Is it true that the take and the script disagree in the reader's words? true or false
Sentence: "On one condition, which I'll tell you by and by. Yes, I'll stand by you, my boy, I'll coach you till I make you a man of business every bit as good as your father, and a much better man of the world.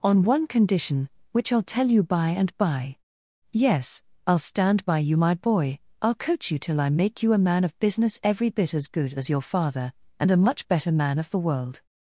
false